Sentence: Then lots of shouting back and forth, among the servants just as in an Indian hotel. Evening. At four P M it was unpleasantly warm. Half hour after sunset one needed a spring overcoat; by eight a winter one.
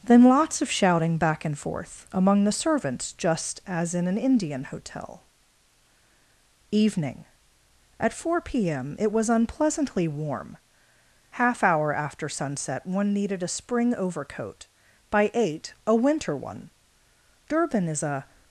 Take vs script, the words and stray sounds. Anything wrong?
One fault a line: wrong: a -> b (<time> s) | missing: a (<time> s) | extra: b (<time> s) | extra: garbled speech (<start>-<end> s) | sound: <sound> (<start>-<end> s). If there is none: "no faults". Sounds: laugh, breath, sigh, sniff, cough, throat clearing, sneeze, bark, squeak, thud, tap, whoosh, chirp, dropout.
extra: Durban is a (17.5 s)